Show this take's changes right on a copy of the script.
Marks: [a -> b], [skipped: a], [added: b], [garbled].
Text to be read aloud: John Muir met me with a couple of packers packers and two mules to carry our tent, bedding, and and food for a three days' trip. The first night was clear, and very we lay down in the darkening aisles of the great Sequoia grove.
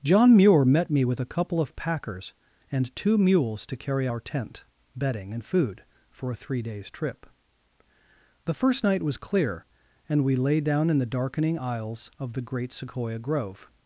John Muir met me with a couple of packers [skipped: packers] and two mules to carry our tent, bedding, and [skipped: and] food for a three days' trip. The first night was clear, and [skipped: very] we lay down in the darkening aisles of the great Sequoia grove.